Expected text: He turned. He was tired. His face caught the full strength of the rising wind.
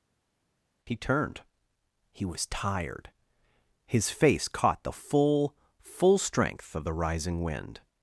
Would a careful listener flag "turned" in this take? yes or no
no